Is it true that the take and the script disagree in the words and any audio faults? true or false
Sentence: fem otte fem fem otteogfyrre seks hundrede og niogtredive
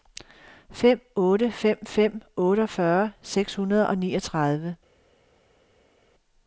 false